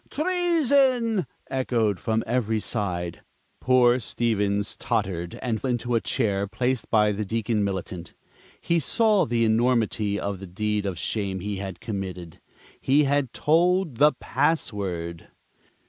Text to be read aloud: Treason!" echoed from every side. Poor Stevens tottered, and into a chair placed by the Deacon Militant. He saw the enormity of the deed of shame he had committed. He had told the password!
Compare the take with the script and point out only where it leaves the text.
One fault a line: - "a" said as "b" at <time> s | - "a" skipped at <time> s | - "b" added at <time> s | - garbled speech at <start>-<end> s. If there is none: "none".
none